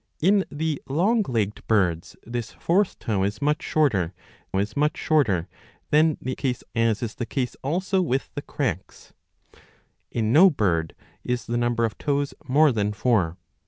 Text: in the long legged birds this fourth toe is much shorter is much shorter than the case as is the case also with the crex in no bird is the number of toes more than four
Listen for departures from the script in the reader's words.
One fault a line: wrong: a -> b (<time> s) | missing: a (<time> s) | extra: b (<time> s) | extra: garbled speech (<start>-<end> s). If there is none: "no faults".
no faults